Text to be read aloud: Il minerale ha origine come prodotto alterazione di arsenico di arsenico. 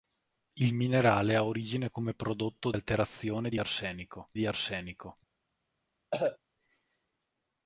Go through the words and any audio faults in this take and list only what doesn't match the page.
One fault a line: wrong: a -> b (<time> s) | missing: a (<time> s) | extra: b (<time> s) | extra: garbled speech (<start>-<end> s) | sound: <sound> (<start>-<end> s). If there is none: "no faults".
sound: cough (6.1-6.4 s)